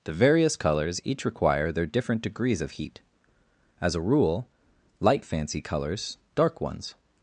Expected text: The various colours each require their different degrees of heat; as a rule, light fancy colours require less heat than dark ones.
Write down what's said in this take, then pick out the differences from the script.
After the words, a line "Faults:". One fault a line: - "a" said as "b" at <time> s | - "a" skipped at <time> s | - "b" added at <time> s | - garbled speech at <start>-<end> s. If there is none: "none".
The various colours each require their different degrees of heat; as a rule, light fancy colours dark ones.
Faults:
- "require less heat than" skipped at 6.2 s